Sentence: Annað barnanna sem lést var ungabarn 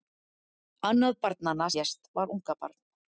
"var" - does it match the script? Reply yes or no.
yes